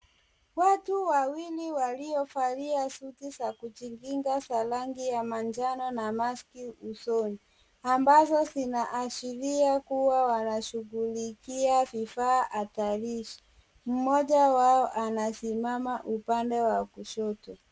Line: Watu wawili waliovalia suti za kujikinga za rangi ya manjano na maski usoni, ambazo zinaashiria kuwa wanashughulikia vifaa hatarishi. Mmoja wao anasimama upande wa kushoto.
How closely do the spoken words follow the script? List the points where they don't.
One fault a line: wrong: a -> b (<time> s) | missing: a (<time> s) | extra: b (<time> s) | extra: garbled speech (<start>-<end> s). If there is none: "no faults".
no faults